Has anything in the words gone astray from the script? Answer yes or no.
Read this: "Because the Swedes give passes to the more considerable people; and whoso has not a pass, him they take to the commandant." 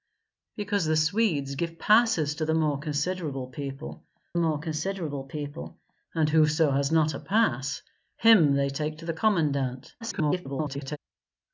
yes